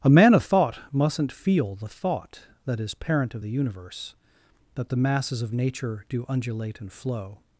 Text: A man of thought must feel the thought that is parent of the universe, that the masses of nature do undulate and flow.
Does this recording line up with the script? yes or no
no